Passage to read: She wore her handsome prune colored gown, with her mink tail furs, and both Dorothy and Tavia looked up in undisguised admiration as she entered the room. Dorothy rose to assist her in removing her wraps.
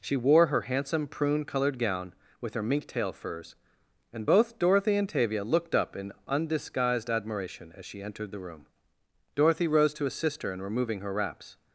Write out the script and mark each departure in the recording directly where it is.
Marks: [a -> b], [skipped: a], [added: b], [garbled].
She wore her handsome prune colored gown, with her mink tail furs, and both Dorothy and Tavia looked up in undisguised admiration as she entered the room. Dorothy rose to assist her in removing her wraps.